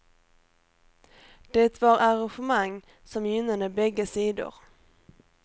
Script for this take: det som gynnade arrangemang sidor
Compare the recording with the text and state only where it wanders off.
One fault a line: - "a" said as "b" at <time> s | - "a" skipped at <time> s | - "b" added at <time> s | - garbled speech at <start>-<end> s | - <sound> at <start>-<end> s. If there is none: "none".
- "var arrangemang" added at 1.8 s
- "arrangemang" said as "bägge" at 3.7 s